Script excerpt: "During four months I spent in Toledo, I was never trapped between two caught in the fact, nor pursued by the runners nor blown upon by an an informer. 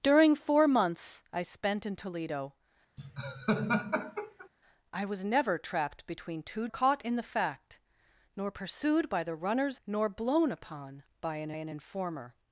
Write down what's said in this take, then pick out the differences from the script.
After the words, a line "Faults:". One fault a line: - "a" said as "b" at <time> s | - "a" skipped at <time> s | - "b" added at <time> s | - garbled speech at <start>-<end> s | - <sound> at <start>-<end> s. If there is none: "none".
"During four months I spent in Toledo, I was never trapped between two caught in the fact, nor pursued by the runners nor blown upon by an an informer.
Faults:
- laugh at 3.0-4.5 s